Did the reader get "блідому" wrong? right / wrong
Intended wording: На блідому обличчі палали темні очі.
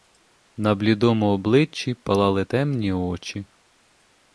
right